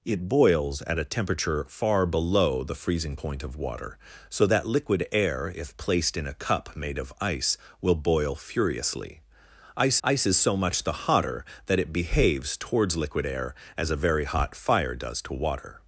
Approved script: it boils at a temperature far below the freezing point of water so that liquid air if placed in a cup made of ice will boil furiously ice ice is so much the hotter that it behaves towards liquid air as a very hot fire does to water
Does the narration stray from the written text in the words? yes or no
no